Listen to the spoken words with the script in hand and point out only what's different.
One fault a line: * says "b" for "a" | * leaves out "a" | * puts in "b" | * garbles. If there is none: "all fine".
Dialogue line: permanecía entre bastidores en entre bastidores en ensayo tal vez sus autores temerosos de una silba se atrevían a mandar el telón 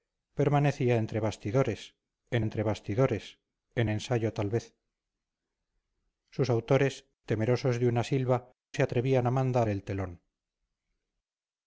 all fine